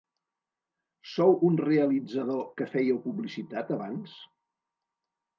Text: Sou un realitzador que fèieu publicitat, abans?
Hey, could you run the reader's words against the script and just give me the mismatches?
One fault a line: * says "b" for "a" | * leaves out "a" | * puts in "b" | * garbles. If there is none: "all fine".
all fine